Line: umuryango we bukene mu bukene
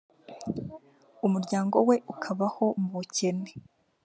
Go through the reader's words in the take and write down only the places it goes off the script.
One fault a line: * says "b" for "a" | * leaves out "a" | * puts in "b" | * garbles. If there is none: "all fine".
* says "ukabaho" for "bukene"